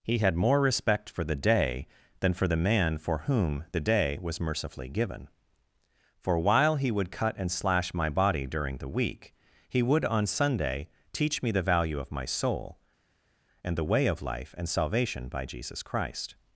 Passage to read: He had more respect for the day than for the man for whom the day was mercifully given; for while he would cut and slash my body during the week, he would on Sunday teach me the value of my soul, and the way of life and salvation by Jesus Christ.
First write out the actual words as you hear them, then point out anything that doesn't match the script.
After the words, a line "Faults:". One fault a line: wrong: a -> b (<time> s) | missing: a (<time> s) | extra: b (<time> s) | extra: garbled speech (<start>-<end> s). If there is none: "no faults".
He had more respect for the day than for the man for whom the day was mercifully given; for while he would cut and slash my body during the week, he would on Sunday teach me the value of my soul, and the way of life and salvation by Jesus Christ.
Faults:
no faults